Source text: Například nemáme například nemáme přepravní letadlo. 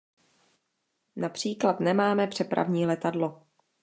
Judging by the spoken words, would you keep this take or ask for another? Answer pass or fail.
fail